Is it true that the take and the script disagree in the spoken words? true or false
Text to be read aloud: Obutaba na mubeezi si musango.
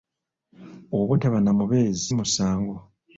true